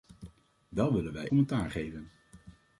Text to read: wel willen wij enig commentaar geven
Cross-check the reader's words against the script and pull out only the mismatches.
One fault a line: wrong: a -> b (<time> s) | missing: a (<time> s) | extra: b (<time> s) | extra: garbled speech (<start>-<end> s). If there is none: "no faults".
missing: enig (1.3 s)